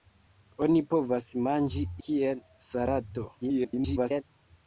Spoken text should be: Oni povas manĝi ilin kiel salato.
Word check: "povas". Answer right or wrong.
right